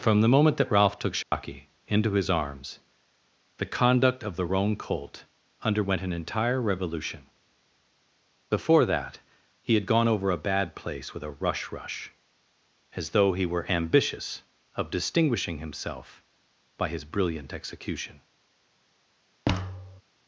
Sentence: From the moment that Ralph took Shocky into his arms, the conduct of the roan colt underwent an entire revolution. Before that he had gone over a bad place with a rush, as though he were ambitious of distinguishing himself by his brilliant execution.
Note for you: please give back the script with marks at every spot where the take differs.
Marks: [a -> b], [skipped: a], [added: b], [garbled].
From the moment that Ralph took Shocky into his arms, the conduct of the roan colt underwent an entire revolution. Before that he had gone over a bad place with a rush, [added: rush] as though he were ambitious of distinguishing himself by his brilliant execution.